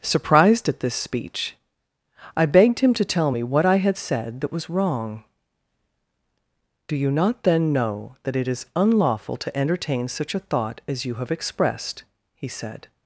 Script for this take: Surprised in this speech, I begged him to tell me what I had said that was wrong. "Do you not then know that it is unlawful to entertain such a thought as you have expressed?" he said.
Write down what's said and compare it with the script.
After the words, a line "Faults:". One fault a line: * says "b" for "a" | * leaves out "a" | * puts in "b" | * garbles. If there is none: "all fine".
Surprised at this speech, I begged him to tell me what I had said that was wrong. "Do you not then know that it is unlawful to entertain such a thought as you have expressed?" he said.
Faults:
* says "at" for "in"